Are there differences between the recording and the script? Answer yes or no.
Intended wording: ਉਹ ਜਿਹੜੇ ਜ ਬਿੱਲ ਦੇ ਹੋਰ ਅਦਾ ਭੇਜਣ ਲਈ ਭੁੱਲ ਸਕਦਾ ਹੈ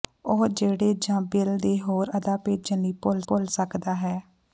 yes